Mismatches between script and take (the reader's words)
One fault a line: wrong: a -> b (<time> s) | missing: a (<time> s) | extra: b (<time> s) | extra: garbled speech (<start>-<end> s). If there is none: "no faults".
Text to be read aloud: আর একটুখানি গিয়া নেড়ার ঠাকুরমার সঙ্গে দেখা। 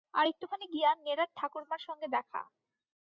no faults